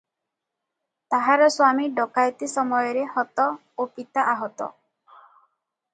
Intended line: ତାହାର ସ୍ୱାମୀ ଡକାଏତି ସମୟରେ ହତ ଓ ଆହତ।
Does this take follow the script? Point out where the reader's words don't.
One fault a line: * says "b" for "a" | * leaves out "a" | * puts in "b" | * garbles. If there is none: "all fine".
* puts in "ପିତା"